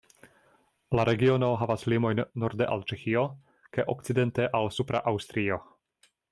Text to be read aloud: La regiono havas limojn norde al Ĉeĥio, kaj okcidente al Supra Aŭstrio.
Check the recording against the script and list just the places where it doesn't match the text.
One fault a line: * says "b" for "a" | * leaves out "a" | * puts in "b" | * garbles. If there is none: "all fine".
all fine